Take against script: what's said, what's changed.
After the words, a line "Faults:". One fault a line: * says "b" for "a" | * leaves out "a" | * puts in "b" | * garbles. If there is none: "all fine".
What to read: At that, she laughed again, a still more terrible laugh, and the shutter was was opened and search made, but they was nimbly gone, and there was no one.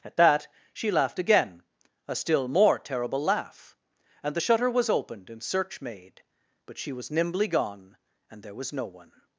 At that, she laughed again, a still more terrible laugh, and the shutter was opened and search made, but she was nimbly gone, and there was no one.
Faults:
* leaves out "was"
* says "she" for "they"